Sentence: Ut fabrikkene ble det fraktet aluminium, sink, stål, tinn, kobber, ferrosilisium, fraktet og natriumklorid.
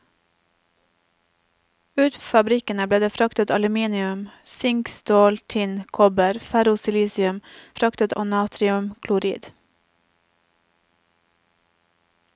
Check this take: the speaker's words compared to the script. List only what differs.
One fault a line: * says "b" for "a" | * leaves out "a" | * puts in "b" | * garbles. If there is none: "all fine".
all fine